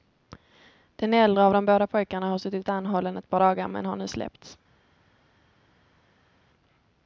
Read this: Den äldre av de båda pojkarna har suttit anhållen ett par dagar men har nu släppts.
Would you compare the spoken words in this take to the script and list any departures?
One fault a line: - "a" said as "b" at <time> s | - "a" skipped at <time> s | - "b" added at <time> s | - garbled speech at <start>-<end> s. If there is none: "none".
none